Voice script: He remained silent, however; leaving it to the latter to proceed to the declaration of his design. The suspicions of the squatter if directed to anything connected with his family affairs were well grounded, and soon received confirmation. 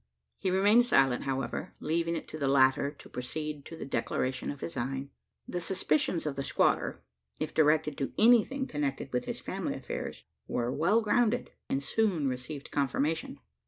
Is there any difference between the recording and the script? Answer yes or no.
yes